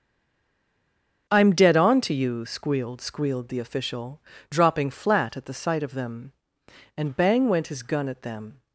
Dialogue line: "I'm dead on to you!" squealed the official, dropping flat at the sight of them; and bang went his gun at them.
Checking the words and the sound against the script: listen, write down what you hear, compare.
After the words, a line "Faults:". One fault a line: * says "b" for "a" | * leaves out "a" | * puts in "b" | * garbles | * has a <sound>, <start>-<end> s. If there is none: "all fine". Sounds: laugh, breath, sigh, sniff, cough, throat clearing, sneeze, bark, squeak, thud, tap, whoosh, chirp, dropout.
"I'm dead on to you!" squealed squealed the official, dropping flat at the sight of them; and bang went his gun at them.
Faults:
* puts in "squealed"